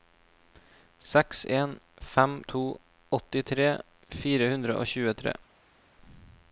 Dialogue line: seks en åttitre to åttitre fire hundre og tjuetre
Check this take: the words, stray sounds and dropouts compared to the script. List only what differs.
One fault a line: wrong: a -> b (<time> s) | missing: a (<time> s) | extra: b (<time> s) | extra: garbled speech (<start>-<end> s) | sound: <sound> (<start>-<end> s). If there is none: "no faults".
wrong: åttitre -> fem (2.1 s)